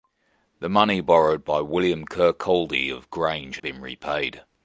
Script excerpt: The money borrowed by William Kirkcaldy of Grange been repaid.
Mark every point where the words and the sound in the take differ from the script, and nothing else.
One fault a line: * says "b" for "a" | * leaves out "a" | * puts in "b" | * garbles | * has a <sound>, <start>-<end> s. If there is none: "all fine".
all fine